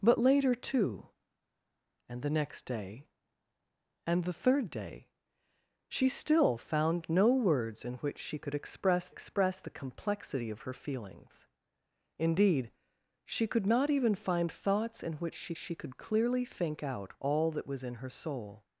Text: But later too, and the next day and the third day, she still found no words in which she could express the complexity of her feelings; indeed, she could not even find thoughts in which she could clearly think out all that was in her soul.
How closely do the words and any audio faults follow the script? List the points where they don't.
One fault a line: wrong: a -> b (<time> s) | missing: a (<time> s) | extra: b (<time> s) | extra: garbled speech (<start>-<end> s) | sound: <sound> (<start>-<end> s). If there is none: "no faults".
extra: express (9.1 s)
extra: she (15.6 s)